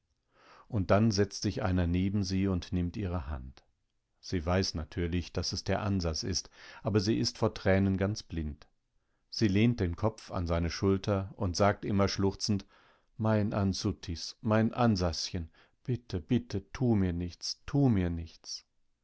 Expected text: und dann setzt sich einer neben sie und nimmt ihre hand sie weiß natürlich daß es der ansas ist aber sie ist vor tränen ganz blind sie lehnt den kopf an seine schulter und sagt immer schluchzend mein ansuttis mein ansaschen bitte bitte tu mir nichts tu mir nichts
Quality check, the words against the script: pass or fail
pass